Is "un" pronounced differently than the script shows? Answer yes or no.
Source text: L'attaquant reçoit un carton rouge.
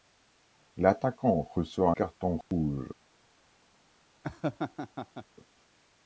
yes